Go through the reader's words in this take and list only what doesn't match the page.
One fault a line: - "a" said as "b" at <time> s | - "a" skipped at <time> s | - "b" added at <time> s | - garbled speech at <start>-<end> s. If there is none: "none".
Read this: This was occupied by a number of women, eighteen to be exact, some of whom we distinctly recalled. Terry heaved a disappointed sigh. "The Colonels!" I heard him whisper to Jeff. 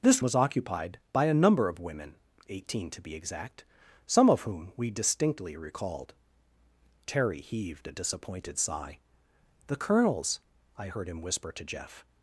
none